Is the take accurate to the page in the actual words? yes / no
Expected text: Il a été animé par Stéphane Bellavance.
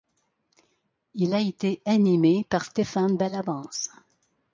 yes